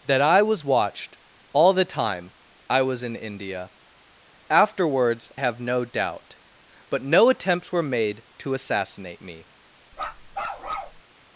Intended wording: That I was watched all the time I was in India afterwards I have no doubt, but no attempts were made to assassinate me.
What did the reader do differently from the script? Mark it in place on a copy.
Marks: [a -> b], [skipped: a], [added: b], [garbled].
That I was watched all the time I was in India afterwards [skipped: I] have no doubt, but no attempts were made to assassinate me.